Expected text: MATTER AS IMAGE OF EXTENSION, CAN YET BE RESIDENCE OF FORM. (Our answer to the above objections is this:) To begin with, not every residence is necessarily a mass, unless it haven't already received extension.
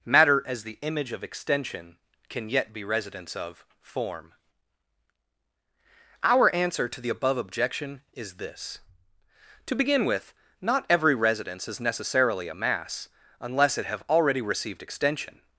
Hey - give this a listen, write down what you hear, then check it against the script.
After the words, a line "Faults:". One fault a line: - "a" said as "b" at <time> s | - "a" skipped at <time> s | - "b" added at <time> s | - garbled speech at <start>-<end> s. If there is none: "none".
MATTER AS THE IMAGE OF EXTENSION, CAN YET BE RESIDENCE OF FORM. (Our answer to the above objection is this:) To begin with, not every residence is necessarily a mass, unless it have already received extension.
Faults:
- "THE" added at 0.6 s
- "objections" said as "objection" at 7.4 s
- "haven't" said as "have" at 13.9 s